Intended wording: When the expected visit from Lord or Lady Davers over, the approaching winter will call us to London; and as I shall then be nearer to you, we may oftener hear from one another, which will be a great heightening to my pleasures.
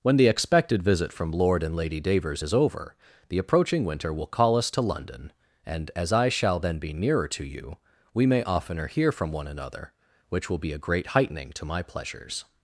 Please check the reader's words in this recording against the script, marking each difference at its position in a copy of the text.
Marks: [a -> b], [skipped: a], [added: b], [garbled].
When the expected visit from Lord [or -> and] Lady Davers [added: is] over, the approaching winter will call us to London; and as I shall then be nearer to you, we may oftener hear from one another, which will be a great heightening to my pleasures.